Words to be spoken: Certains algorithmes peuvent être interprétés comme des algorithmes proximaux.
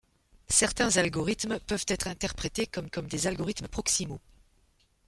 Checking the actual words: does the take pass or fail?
fail